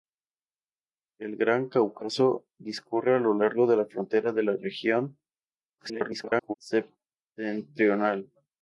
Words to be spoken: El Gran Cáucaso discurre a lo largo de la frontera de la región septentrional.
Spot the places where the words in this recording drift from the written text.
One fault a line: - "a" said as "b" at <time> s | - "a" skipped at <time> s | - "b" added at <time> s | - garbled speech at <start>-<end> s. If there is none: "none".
- garbled speech at 5.8-6.5 s